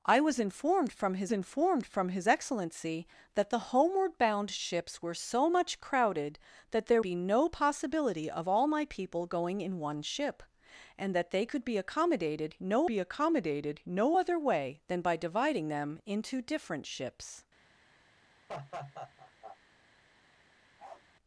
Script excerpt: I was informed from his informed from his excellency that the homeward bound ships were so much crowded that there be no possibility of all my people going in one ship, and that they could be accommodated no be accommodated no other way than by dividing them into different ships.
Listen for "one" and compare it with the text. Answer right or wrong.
right